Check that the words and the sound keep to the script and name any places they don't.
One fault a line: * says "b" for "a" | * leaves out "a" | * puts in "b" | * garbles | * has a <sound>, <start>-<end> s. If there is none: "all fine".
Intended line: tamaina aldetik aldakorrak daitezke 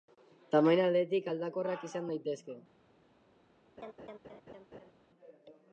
* puts in "izan"
* has a laugh, 3.8-4.9 s